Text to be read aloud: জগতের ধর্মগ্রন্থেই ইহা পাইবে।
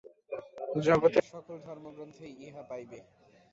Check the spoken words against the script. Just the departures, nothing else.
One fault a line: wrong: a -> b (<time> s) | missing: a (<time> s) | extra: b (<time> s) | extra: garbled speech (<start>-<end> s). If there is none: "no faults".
extra: সকল (1.3 s)